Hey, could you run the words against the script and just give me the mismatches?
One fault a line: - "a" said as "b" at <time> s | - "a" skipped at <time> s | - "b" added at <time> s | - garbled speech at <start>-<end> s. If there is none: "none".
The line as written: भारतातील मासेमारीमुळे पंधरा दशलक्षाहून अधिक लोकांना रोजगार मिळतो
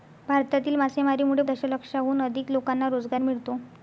- "पंधरा" skipped at 1.4 s